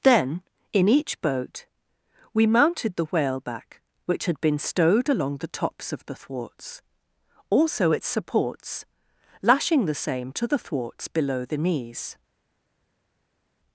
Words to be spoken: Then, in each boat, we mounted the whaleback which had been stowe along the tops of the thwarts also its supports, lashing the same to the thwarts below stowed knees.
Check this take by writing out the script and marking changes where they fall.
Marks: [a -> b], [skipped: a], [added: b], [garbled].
Then, in each boat, we mounted the whaleback which had been [stowe -> stowed] along the tops of the thwarts also its supports, lashing the same to the thwarts below [stowed -> the] knees.